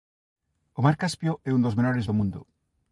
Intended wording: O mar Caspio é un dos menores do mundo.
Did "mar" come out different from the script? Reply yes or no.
no